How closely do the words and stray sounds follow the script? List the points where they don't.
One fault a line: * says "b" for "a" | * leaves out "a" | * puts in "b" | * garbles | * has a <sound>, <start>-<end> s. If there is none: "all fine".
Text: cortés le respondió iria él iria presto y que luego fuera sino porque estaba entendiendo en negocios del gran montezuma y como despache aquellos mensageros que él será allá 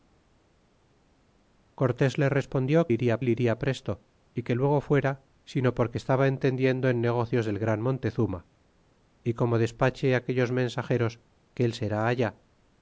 all fine